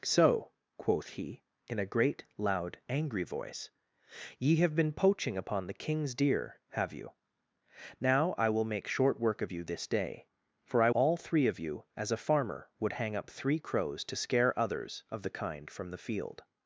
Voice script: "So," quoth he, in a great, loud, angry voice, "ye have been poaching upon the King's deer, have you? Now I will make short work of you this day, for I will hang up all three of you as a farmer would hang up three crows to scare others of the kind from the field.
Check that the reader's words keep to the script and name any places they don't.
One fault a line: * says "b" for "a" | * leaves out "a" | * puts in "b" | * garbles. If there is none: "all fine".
* leaves out "will hang up"